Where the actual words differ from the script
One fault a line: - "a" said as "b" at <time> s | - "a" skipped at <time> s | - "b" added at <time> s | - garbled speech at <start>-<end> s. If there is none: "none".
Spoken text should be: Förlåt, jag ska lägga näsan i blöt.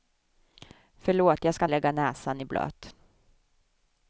none